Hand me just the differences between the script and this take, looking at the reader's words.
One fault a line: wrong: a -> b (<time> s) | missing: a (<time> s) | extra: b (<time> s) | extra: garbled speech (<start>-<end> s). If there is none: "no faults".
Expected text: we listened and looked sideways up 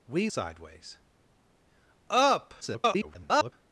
missing: listened and looked (0.3 s)
extra: garbled speech (2.6-3.5 s)